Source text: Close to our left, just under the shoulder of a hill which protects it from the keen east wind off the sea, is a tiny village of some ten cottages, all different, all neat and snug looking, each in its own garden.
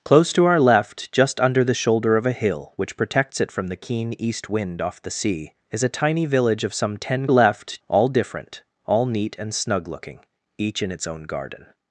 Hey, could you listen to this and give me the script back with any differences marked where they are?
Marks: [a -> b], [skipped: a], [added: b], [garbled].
Close to our left, just under the shoulder of a hill which protects it from the keen east wind off the sea, is a tiny village of some ten [cottages, -> left] all different, all neat and snug looking, each in its own garden.